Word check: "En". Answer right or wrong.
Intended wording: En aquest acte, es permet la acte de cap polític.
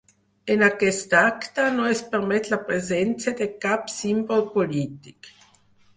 right